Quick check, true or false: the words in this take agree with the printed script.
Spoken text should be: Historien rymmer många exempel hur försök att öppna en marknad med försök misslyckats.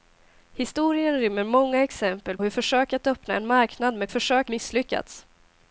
true